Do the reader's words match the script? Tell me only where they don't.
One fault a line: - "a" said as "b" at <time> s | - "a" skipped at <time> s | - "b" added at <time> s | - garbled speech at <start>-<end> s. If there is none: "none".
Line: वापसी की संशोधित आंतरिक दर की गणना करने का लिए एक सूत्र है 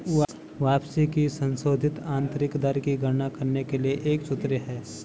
- "का" said as "के" at 3.6 s